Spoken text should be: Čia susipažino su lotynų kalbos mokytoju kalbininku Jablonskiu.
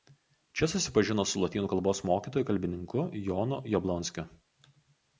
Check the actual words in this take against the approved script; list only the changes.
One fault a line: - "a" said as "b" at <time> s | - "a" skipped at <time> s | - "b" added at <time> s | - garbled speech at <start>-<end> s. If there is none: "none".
- "Jonu" added at 3.3 s